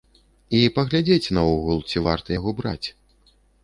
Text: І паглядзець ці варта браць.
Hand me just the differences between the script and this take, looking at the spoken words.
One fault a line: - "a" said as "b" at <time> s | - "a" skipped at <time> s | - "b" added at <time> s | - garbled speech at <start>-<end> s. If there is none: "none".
- "наогул" added at 1.4 s
- "яго" added at 2.4 s